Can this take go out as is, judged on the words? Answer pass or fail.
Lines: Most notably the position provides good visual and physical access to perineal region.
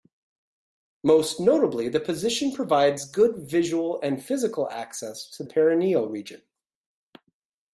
pass